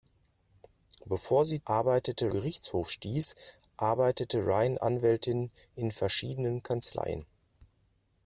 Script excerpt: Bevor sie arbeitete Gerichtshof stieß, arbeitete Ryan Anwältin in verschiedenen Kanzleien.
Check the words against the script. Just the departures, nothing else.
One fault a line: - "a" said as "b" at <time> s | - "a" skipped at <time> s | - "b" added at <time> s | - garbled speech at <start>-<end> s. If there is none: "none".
none